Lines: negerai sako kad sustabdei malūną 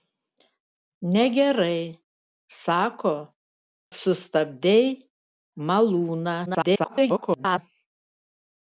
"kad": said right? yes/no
no